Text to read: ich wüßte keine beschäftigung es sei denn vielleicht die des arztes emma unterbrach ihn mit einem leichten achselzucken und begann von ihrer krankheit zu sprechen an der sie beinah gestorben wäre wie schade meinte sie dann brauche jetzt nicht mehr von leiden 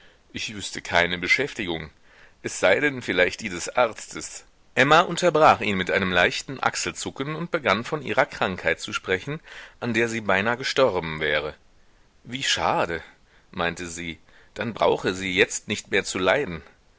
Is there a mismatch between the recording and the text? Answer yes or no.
yes